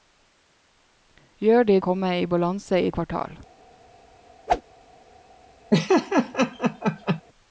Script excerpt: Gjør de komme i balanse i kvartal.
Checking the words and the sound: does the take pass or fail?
fail